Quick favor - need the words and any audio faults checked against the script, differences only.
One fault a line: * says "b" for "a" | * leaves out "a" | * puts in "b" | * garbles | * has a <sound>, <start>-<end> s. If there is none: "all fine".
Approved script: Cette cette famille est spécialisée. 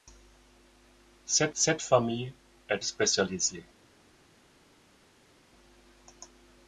all fine